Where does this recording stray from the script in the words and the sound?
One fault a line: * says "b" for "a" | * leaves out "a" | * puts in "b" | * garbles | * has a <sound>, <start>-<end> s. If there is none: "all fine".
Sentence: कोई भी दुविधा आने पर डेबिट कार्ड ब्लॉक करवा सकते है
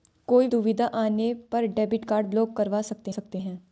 * leaves out "भी"
* puts in "सकते"